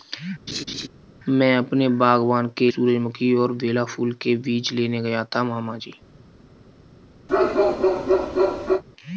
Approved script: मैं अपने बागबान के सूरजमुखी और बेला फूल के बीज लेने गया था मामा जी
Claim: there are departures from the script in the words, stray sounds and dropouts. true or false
true